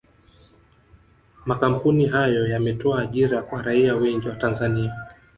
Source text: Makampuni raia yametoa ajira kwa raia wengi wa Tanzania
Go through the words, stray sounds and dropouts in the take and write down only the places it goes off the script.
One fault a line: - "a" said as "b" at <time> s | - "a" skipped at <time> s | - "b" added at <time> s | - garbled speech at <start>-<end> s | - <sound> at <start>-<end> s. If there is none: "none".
- "raia" said as "hayo" at 2.0 s